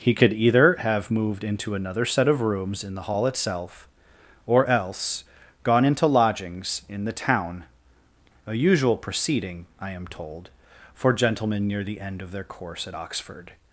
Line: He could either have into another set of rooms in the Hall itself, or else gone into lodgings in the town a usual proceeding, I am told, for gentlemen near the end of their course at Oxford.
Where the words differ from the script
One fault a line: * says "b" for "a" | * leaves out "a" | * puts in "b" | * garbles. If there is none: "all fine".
* puts in "moved"